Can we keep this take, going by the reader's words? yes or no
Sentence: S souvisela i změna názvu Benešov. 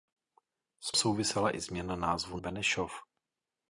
yes